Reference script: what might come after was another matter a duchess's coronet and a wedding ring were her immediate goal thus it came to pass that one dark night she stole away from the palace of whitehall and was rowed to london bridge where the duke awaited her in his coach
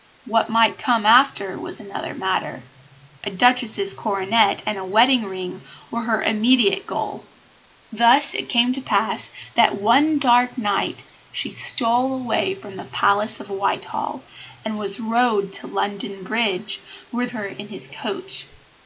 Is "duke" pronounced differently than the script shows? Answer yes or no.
yes